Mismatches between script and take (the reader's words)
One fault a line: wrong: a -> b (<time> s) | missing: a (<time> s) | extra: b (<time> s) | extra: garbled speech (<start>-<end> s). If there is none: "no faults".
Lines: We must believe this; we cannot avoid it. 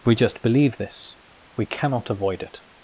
wrong: must -> just (0.1 s)